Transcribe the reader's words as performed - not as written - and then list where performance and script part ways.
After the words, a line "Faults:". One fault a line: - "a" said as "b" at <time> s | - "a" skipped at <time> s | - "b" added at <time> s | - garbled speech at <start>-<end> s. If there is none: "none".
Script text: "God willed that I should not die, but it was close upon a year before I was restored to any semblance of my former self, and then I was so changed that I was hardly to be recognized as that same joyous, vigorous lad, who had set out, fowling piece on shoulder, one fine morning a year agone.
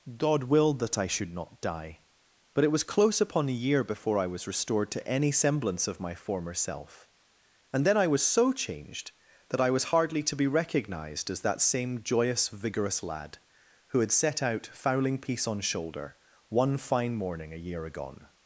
"God willed that I should not die, but it was close upon a year before I was restored to any semblance of my former self, and then I was so changed that I was hardly to be recognized as that same joyous, vigorous lad, who had set out, fowling piece on shoulder, one fine morning a year agone.
Faults:
none